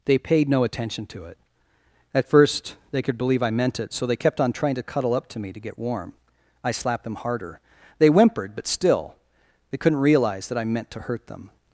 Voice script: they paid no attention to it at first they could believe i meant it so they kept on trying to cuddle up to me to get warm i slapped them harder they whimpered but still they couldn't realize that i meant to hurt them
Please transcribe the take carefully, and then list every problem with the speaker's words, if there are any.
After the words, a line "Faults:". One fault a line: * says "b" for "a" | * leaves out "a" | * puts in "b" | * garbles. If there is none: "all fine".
they paid no attention to it at first they could believe i meant it so they kept on trying to cuddle up to me to get warm i slapped them harder they whimpered but still they couldn't realize that i meant to hurt them
Faults:
all fine